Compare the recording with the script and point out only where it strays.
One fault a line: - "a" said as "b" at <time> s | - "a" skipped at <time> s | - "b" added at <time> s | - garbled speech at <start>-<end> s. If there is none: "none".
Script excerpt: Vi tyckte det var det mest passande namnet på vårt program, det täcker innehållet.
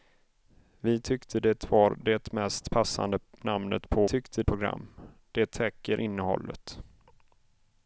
- "vårt" said as "tyckte" at 4.0 s